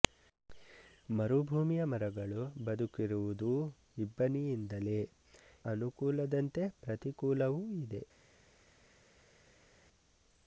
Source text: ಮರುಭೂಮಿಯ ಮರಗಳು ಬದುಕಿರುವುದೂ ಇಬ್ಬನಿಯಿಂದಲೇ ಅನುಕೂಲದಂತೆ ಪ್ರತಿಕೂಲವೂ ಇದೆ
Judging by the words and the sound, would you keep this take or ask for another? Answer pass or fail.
pass